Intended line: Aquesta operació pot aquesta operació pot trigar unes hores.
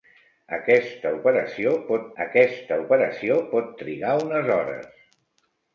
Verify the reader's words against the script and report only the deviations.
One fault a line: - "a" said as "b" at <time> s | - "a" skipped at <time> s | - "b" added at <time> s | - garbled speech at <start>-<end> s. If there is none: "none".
none